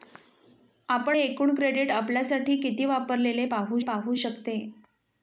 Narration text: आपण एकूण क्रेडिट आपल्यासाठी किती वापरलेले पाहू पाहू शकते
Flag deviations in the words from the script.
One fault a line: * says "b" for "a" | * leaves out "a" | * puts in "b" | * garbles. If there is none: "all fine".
all fine